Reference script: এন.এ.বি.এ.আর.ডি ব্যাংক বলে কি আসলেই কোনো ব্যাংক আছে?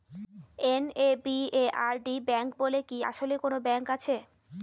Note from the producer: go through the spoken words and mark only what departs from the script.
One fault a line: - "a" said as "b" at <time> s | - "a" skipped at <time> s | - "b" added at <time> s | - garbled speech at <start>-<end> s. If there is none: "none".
none